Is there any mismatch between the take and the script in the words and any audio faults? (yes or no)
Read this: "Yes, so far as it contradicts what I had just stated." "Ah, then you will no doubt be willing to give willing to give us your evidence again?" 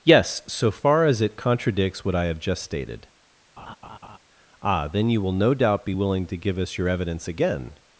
yes